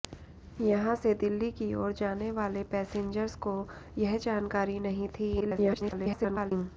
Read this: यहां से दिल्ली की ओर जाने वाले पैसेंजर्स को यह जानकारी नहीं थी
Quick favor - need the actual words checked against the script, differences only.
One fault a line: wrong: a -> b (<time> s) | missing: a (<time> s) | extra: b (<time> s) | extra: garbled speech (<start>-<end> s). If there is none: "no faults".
extra: garbled speech (5.4-6.5 s)